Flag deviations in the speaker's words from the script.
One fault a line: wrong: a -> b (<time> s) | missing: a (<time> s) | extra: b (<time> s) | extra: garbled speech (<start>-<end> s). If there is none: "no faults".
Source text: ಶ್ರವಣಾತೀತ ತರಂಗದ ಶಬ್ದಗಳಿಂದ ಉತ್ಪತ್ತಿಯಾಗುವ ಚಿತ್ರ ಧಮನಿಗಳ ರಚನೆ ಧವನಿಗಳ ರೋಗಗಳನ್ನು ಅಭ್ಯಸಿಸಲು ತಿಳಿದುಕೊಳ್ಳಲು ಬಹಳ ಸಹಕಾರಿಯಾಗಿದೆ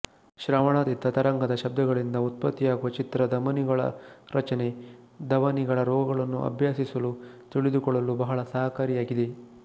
no faults